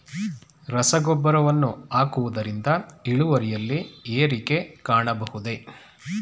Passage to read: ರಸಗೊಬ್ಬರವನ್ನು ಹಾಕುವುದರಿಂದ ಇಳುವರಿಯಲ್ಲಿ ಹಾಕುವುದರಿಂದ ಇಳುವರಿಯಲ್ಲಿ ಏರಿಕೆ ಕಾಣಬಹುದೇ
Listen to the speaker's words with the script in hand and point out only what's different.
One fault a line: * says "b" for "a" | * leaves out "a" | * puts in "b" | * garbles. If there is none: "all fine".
* leaves out "ಹಾಕುವುದರಿಂದ ಇಳುವರಿಯಲ್ಲಿ"